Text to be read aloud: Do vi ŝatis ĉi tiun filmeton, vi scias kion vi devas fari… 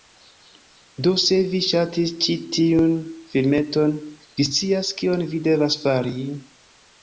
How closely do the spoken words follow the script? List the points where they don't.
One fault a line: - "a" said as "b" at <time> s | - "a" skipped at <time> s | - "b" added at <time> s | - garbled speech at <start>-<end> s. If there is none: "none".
- "se" added at 1.2 s